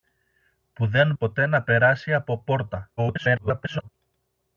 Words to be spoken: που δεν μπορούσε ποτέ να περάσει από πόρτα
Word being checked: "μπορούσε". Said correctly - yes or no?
no